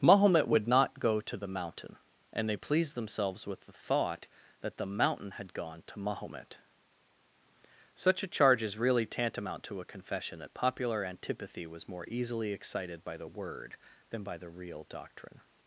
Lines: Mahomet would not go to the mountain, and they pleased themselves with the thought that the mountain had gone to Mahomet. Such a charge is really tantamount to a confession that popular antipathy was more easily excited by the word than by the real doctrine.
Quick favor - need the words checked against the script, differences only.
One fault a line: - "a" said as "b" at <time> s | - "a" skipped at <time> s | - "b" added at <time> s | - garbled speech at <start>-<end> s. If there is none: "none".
none